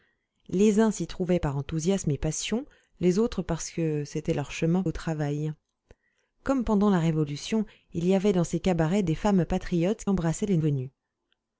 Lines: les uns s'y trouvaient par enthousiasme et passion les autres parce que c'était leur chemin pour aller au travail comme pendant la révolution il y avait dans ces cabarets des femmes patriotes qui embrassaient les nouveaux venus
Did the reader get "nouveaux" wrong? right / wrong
wrong